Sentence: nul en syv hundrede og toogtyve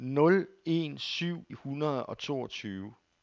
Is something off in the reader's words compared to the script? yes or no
no